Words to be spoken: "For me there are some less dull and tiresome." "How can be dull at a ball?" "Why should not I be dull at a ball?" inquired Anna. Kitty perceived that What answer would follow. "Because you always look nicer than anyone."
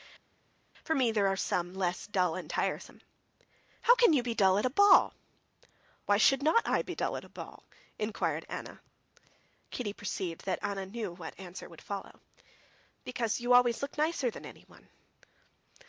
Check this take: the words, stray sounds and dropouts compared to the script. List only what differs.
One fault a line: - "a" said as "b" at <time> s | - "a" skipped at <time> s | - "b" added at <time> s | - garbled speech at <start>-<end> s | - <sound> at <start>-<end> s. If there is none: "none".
- "you" added at 4.1 s
- "Anna knew" added at 10.6 s